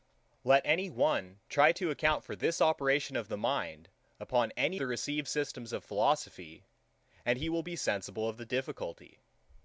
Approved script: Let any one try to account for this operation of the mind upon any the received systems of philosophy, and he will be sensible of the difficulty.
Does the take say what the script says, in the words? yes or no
yes